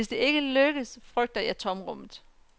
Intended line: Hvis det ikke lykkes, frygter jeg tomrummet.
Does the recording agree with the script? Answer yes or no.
yes